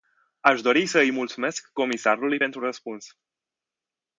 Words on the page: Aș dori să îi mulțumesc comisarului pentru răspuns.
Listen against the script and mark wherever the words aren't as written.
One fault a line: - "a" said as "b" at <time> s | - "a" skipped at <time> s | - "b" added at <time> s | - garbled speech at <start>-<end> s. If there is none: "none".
none